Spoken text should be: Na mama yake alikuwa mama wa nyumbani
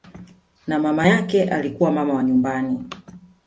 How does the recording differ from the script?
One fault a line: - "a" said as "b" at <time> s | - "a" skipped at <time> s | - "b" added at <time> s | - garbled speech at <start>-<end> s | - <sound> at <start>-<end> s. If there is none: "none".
none